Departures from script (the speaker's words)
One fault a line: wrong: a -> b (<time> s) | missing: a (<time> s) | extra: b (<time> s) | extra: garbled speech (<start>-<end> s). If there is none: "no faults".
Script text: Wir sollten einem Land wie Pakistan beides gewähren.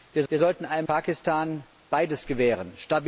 extra: wir (0.3 s)
missing: Land wie (0.9 s)